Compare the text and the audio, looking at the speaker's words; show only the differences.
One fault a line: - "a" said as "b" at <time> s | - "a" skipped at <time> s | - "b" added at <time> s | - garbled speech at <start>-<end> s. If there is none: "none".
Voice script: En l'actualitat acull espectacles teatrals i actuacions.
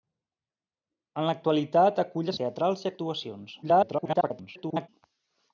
- "espectacles" skipped at 2.3 s
- garbled speech at 3.6-4.9 s